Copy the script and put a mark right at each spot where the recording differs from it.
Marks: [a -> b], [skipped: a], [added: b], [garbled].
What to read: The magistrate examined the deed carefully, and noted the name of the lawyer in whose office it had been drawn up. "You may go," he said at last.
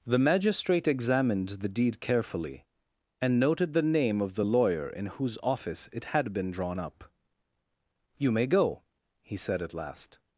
The magistrate examined the deed carefully, and noted the name of the lawyer in whose office it had been drawn up. "You may go," he said at last.